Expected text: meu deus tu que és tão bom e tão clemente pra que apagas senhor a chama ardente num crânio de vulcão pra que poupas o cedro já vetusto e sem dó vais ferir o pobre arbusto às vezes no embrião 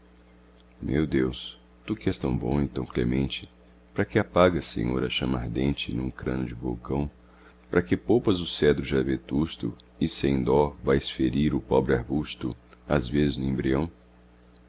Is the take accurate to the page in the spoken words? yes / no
yes